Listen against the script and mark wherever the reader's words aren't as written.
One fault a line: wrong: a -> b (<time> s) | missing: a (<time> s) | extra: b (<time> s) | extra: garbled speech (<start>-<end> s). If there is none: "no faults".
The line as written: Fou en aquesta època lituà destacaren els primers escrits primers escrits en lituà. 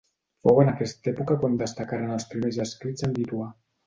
wrong: lituà -> quan (1.4 s)
missing: primers escrits (3.1 s)